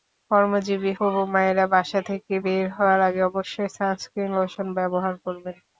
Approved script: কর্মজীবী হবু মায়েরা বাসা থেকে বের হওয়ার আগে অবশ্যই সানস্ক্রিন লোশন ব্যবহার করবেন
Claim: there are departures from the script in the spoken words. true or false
false